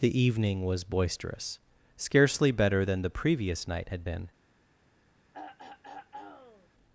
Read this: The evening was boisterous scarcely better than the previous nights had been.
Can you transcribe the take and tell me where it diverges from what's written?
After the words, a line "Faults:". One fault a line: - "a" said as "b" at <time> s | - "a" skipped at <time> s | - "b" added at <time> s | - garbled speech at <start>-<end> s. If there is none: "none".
The evening was boisterous scarcely better than the previous night had been.
Faults:
- "nights" said as "night" at 3.7 s